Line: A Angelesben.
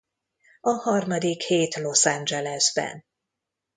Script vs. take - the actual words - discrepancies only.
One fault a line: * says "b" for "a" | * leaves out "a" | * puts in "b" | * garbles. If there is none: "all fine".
* puts in "harmadik hét Los"